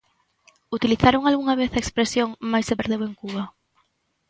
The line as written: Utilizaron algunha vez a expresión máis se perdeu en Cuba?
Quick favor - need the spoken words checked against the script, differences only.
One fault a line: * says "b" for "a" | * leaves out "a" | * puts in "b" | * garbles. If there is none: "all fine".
all fine